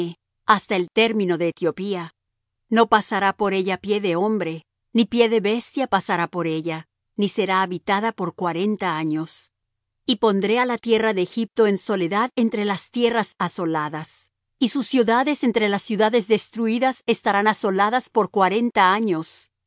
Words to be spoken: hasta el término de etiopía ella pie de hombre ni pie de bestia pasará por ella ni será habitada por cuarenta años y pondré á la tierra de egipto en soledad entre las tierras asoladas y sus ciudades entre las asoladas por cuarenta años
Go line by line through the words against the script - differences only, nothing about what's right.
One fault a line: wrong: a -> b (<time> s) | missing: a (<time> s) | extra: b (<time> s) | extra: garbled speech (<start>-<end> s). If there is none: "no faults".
extra: no pasará por (2.7 s)
extra: ciudades destruidas estarán (15.8 s)